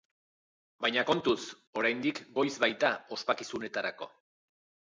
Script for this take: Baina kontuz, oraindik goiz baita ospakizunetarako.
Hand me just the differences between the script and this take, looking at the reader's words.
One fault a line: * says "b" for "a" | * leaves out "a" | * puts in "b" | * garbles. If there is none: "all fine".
all fine